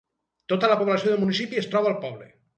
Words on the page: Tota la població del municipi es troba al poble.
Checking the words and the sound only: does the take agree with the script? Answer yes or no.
yes